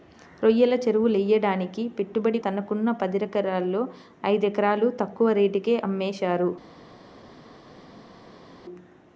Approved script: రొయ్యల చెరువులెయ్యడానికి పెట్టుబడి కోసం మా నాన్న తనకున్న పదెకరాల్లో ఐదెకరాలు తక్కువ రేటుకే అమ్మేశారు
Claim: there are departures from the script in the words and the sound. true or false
true